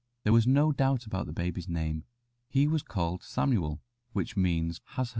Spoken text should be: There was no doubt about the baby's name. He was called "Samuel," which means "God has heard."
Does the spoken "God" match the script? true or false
false